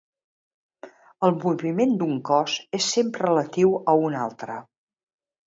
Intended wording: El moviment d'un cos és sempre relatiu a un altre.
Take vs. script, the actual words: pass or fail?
pass